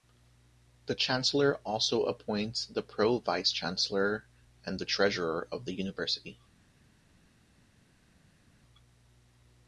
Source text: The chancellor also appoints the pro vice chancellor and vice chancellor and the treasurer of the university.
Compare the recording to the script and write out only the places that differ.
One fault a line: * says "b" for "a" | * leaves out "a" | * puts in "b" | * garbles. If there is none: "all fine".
* leaves out "vice chancellor and"